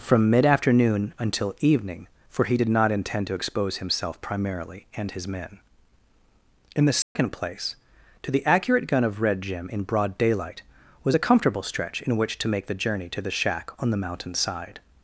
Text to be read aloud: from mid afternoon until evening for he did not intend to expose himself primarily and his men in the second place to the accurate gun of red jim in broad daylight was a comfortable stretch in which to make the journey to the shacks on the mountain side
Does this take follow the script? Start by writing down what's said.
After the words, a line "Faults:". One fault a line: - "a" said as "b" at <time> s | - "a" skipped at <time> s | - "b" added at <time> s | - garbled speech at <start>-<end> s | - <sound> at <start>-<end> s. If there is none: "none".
from mid afternoon until evening for he did not intend to expose himself primarily and his men in the second place to the accurate gun of red jim in broad daylight was a comfortable stretch in which to make the journey to the shack on the mountain side
Faults:
- dropout at 7.0-7.2 s
- "shacks" said as "shack" at 13.3 s